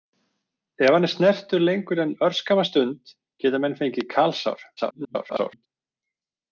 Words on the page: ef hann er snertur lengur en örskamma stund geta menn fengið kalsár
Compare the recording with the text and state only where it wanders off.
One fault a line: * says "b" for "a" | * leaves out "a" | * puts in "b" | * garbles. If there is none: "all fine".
* garbles